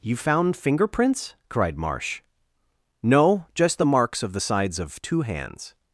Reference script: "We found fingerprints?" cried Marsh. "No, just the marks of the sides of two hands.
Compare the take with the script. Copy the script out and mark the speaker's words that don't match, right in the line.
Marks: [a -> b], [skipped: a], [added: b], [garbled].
["We -> You] found fingerprints?" cried Marsh. "No, just the marks of the sides of two hands.